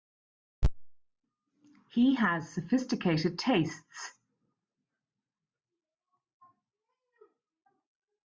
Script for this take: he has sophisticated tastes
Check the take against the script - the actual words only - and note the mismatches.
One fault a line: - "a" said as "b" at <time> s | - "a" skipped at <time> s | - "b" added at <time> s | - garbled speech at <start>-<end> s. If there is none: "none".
none